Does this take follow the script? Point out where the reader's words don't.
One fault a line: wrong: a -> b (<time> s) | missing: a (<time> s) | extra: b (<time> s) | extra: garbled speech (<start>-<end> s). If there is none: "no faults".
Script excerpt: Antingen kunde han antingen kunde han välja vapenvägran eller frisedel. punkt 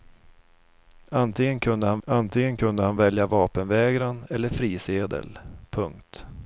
no faults